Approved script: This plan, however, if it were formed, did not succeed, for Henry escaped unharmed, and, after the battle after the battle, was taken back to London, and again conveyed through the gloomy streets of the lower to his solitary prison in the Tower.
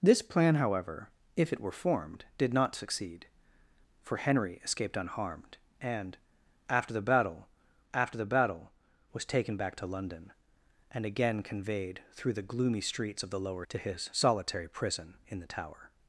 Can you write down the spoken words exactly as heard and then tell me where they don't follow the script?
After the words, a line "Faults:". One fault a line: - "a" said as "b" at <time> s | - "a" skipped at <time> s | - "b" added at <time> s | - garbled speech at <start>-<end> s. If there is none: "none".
This plan, however, if it were formed, did not succeed, for Henry escaped unharmed, and, after the battle after the battle, was taken back to London, and again conveyed through the gloomy streets of the lower to his solitary prison in the Tower.
Faults:
none